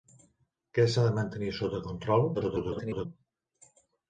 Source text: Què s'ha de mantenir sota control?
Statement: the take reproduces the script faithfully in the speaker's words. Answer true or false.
false